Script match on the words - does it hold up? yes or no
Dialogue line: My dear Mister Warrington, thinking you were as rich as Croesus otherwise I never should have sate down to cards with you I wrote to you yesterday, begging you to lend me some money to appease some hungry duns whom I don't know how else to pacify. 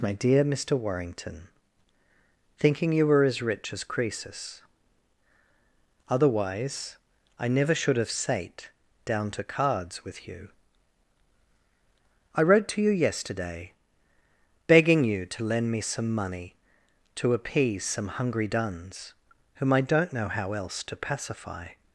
yes